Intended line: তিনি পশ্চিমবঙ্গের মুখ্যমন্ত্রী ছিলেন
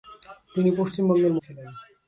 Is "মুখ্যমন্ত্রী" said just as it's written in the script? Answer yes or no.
no